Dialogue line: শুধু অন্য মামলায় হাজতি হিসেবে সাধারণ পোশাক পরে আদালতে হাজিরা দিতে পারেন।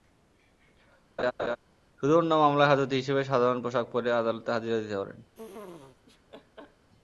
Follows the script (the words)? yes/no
yes